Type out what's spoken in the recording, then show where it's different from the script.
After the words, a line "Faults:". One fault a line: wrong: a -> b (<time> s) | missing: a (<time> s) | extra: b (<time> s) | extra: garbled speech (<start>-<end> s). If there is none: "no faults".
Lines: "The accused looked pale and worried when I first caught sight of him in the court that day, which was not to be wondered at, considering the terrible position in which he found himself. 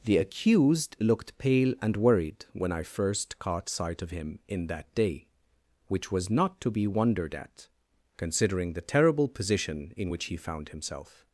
"The accused looked pale and worried when I first caught sight of him in that day, which was not to be wondered at, considering the terrible position in which he found himself.
Faults:
missing: the court (4.7 s)